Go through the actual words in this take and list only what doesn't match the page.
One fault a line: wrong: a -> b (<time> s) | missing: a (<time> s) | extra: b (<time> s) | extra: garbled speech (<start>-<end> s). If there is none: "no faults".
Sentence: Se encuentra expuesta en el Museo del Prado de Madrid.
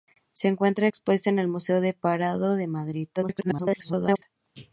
extra: garbled speech (3.2-4.2 s)